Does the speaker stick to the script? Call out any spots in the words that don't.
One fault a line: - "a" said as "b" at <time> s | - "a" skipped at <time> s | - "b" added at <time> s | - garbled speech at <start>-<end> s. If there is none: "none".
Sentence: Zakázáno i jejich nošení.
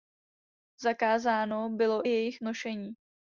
- "bylo" added at 1.7 s